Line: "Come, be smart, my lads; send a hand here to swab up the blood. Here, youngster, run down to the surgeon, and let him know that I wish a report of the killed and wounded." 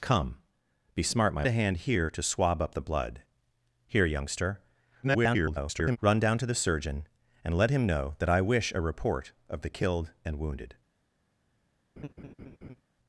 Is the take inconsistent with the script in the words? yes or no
yes